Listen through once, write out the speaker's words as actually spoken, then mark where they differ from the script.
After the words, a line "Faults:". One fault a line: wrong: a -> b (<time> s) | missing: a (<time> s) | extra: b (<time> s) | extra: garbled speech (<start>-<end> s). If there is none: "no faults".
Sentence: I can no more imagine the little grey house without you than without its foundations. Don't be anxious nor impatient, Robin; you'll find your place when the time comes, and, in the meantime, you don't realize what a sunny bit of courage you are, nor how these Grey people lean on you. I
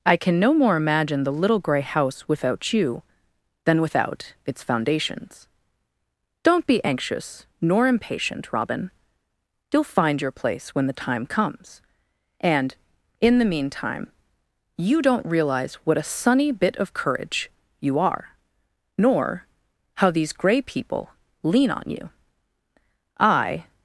I can no more imagine the little grey house without you than without its foundations. Don't be anxious nor impatient, Robin; you'll find your place when the time comes, and, in the meantime, you don't realize what a sunny bit of courage you are, nor how these Grey people lean on you. I
Faults:
no faults